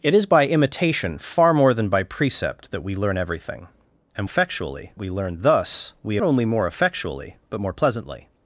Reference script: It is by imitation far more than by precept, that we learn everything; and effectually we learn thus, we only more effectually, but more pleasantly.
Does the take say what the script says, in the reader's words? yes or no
yes